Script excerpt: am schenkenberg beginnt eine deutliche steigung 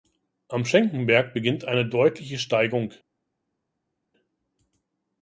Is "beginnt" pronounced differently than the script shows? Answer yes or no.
no